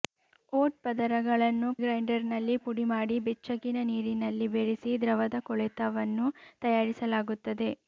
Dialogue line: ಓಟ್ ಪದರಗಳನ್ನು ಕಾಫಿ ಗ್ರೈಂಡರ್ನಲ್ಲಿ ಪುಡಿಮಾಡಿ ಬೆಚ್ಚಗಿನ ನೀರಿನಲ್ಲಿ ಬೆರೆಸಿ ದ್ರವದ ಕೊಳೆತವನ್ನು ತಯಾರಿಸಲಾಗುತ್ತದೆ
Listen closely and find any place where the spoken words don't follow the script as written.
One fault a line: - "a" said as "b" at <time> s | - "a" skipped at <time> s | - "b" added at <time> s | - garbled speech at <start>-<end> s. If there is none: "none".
- "ಕಾಫಿ" skipped at 1.7 s